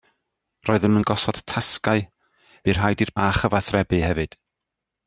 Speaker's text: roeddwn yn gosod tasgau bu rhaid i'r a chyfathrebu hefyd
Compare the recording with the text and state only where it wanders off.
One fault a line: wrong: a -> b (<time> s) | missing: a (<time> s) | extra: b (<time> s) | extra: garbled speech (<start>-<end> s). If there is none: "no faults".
no faults